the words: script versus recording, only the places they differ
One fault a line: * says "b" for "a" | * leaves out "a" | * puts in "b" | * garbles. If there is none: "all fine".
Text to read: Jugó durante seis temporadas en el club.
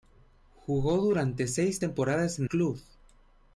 * leaves out "el"